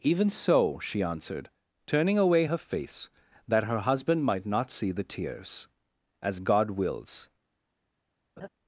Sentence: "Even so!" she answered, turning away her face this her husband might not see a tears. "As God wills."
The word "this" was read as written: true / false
false